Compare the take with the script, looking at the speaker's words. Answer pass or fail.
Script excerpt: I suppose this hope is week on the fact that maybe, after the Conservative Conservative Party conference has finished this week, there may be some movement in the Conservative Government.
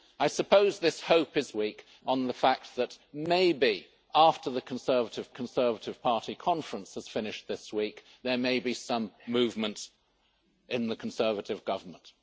pass